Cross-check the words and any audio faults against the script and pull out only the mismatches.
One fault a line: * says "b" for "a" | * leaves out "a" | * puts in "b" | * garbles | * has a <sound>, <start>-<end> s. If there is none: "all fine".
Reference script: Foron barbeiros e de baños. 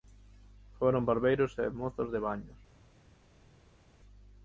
* puts in "mozos"